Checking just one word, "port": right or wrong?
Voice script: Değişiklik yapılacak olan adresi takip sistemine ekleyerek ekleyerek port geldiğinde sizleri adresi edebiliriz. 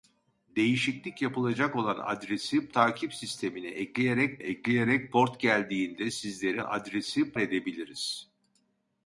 right